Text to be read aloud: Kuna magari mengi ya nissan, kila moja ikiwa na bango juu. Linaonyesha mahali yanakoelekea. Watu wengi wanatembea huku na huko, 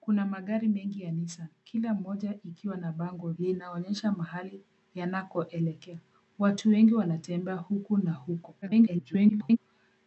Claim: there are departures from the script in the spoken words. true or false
true